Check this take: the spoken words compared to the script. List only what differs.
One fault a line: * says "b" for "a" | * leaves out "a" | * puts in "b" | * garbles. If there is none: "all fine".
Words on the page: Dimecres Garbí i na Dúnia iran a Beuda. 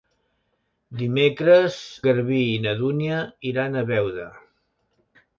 all fine